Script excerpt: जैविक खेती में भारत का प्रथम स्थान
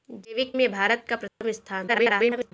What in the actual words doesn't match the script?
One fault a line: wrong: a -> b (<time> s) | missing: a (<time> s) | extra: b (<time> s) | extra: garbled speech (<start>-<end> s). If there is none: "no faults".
missing: खेती (0.5 s)
extra: garbled speech (1.9-2.5 s)